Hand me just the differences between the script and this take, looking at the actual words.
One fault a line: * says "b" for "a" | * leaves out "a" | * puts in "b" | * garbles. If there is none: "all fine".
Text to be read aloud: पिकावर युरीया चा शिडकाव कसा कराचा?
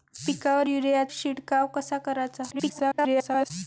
* leaves out "चा"
* garbles